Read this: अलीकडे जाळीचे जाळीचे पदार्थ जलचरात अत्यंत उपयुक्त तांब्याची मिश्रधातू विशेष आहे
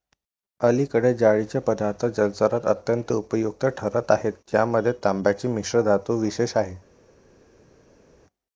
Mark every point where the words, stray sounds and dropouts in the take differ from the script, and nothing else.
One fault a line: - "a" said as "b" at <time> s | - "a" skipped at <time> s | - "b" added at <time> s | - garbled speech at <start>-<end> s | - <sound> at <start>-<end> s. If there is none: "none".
- "जाळीचे" skipped at 1.6 s
- "ठरत आहेत ज्यामध्ये" added at 3.8 s